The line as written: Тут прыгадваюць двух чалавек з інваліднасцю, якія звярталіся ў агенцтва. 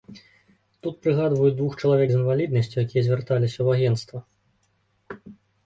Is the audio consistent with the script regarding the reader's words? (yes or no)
yes